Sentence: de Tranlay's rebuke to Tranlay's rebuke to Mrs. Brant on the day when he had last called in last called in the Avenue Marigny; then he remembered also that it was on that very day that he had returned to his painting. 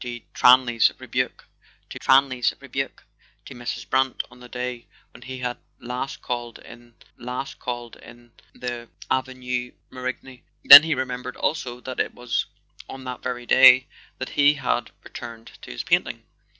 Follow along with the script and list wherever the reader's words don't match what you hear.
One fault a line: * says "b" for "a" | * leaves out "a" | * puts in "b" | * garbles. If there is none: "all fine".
all fine